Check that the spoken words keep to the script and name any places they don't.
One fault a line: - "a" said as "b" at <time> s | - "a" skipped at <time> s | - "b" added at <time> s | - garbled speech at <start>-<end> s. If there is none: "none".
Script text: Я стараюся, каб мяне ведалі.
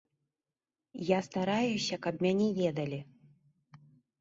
none